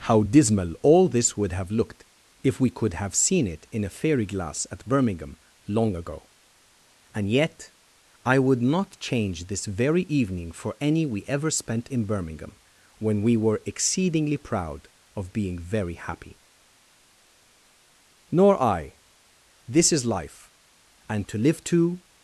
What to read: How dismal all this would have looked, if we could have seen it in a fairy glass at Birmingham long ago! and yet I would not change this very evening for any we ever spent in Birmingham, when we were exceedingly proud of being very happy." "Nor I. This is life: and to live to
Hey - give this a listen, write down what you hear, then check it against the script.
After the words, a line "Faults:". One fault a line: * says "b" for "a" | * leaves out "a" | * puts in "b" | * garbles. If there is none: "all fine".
How dismal all this would have looked, if we could have seen it in a fairy glass at Birmingham long ago! and yet I would not change this very evening for any we ever spent in Birmingham, when we were exceedingly proud of being very happy." "Nor I. This is life: and to live to
Faults:
all fine